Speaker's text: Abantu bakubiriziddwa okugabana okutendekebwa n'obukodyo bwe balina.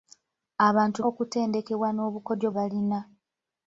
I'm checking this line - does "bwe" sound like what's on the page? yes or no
no